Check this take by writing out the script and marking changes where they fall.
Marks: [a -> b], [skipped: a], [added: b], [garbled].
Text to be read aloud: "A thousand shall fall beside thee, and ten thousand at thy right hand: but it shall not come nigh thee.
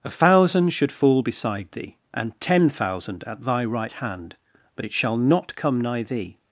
"A thousand [shall -> should] fall beside thee, and ten thousand at thy right hand: but it shall not come nigh thee.